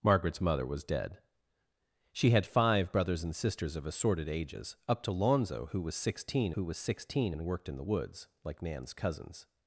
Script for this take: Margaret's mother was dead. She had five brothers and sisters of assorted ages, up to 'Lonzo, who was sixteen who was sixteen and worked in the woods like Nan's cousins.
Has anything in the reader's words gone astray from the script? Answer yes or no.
no